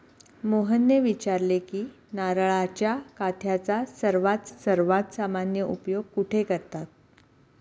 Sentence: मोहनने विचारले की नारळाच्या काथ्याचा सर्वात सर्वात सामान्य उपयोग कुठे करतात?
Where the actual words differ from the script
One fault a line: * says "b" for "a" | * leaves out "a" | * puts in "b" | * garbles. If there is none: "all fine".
all fine